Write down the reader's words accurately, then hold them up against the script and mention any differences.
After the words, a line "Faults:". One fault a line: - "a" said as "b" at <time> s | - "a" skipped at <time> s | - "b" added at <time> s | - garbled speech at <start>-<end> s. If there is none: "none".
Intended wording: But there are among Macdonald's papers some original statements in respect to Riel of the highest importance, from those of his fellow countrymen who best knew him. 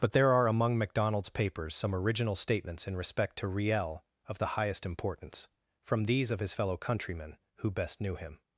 But there are among Macdonald's papers some original statements in respect to Riel of the highest importance, from these of his fellow countrymen who best knew him.
Faults:
- "those" said as "these" at 6.0 s